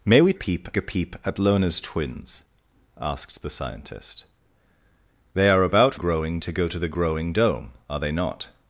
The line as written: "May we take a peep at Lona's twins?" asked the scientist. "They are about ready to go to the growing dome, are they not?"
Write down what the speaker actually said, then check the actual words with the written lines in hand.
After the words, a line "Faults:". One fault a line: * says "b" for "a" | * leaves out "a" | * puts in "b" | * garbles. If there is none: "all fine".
"May we peep a peep at Lona's twins?" asked the scientist. "They are about growing to go to the growing dome, are they not?"
Faults:
* says "peep" for "take"
* says "growing" for "ready"